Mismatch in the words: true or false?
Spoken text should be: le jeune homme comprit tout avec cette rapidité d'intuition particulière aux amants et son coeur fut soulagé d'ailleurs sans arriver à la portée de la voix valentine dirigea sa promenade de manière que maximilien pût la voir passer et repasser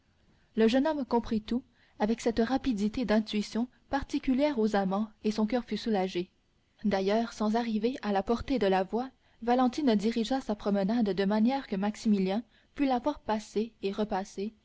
false